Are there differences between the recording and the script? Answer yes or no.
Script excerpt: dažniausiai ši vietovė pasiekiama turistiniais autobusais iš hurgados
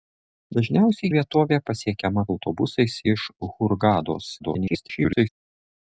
yes